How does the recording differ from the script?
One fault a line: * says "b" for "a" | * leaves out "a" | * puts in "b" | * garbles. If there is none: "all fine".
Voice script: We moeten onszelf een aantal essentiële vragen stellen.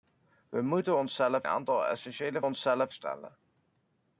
* leaves out "een"
* says "onszelf" for "vragen"